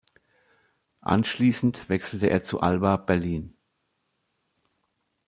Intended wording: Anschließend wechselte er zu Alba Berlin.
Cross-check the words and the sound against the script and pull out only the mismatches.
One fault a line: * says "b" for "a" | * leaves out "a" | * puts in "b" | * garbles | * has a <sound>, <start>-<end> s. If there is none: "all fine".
all fine